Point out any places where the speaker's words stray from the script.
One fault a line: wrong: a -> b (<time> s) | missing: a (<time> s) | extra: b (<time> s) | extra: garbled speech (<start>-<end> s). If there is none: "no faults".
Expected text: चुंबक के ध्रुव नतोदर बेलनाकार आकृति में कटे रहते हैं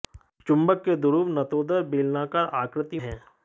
missing: में कटे रहते (3.0 s)